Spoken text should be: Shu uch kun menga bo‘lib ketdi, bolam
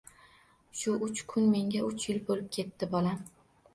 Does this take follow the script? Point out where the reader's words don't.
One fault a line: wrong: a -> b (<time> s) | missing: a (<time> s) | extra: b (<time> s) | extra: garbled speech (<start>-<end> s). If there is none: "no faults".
extra: uch yil (1.9 s)